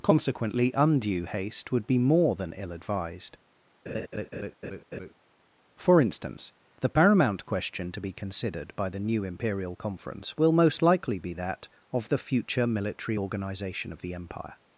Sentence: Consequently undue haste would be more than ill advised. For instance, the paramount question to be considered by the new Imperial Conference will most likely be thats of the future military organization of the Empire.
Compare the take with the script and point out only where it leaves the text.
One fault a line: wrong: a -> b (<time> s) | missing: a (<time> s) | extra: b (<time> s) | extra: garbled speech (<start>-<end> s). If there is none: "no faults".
wrong: thats -> that (11.3 s)